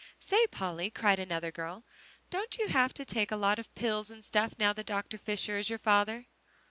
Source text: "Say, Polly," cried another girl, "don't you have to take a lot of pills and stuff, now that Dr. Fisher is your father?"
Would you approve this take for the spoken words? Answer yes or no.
yes